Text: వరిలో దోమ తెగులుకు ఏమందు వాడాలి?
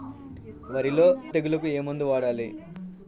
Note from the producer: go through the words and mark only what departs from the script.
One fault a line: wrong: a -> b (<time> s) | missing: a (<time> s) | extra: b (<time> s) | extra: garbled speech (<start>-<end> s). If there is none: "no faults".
missing: దోమ (1.1 s)